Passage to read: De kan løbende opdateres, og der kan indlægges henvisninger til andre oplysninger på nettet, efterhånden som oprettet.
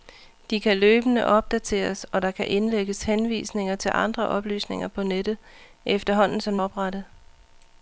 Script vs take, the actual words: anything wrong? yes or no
no